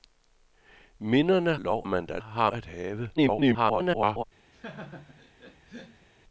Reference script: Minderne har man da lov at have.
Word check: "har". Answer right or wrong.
wrong